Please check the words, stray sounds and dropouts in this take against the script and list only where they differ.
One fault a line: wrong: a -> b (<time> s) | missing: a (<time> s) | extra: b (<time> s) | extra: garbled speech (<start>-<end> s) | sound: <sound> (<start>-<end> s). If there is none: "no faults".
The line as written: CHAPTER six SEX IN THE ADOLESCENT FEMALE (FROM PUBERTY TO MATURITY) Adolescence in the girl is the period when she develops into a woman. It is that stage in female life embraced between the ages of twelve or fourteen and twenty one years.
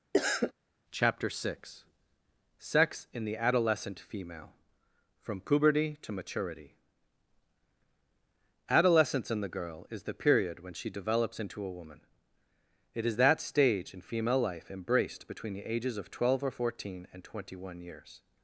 sound: cough (0.1-0.5 s)